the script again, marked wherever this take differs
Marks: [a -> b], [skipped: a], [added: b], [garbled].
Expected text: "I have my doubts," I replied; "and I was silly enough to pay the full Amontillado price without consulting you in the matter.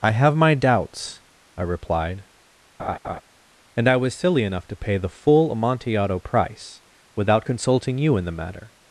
"I have my doubts," I replied; "and I was silly enough to pay the full Amontillado price without consulting you in the matter.